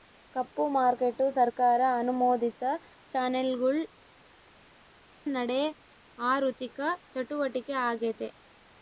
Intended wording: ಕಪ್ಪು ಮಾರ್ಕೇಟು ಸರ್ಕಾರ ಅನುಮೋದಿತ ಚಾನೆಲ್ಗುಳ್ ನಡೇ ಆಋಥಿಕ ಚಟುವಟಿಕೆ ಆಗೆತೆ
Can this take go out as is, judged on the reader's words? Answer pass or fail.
pass